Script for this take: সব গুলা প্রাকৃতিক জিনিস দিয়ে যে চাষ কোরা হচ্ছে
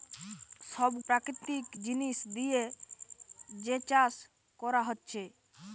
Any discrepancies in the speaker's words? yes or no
yes